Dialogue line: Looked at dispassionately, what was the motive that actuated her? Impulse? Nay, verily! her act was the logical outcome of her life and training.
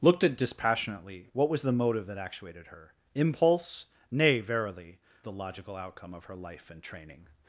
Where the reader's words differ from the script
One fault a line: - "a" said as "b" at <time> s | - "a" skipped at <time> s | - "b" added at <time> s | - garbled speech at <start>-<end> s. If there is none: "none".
- "her act was" skipped at 5.0 s